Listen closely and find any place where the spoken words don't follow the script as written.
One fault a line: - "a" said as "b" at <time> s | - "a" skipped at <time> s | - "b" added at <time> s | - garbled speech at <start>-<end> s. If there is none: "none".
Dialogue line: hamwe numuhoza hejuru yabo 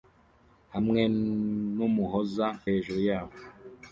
none